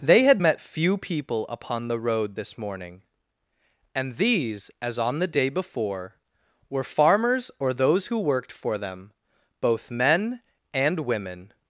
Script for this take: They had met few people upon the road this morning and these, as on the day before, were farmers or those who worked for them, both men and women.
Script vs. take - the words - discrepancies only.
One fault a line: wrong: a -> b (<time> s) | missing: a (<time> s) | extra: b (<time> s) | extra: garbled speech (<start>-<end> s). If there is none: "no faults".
no faults